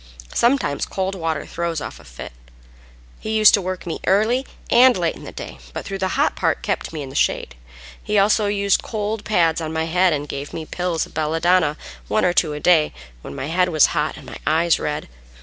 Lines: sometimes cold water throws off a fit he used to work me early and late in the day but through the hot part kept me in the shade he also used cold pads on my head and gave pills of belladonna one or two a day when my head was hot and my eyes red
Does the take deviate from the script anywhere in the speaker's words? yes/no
yes